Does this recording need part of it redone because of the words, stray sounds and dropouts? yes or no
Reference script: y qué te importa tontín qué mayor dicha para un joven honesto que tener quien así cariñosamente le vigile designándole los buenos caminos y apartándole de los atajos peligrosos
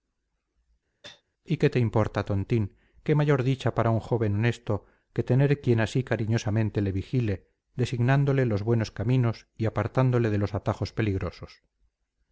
yes